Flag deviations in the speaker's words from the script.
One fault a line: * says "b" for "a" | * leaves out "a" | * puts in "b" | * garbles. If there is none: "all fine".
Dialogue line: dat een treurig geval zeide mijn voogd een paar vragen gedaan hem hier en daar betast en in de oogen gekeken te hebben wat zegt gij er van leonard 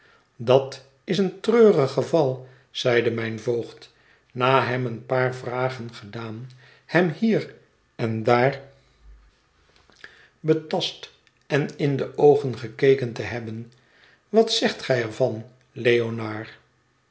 * puts in "is"
* puts in "na hem"